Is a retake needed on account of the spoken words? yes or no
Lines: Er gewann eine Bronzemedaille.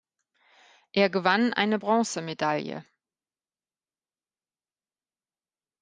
no